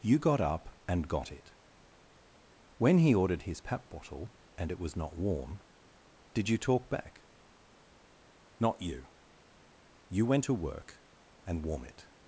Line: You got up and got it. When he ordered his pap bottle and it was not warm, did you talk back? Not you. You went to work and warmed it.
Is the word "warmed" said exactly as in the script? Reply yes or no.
no